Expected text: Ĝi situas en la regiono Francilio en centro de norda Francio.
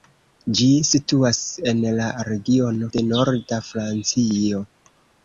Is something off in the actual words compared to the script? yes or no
yes